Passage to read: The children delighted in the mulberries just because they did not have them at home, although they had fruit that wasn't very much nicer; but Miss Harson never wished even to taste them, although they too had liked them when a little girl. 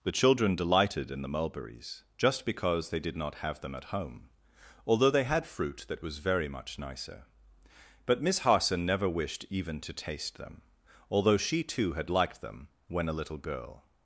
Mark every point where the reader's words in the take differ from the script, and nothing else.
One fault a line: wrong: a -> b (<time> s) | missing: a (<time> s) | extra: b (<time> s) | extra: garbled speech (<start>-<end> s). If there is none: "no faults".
wrong: wasn't -> was (6.0 s)
wrong: they -> she (11.4 s)